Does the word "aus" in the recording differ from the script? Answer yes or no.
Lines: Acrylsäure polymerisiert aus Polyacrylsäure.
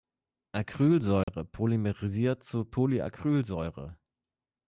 yes